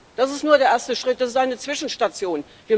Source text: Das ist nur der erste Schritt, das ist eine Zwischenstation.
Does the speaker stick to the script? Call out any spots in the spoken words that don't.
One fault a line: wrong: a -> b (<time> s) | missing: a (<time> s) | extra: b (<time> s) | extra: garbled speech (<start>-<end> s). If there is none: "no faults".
no faults